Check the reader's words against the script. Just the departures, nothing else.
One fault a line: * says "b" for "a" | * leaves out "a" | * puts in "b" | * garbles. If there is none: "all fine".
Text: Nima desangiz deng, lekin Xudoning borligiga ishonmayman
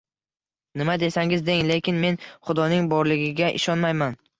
* puts in "men"